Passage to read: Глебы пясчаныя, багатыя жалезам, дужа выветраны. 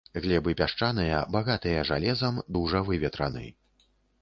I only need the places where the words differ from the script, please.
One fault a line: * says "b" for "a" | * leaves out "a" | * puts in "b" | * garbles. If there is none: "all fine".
all fine